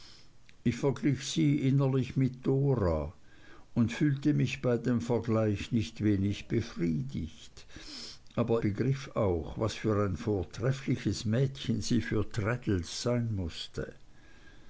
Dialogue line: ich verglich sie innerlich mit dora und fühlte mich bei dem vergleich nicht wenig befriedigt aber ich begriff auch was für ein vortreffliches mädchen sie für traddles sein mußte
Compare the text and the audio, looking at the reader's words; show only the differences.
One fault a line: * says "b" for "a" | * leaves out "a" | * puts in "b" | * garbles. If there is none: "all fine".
* leaves out "ich"